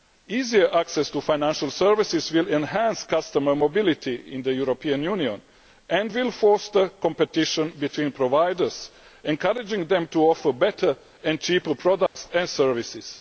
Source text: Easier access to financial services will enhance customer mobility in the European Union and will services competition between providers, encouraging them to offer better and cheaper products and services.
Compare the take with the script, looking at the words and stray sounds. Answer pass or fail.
fail